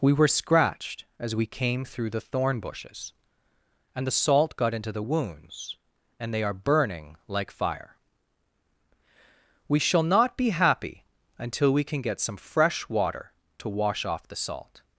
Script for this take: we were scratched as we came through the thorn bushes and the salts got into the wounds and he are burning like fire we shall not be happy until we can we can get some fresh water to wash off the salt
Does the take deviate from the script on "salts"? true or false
true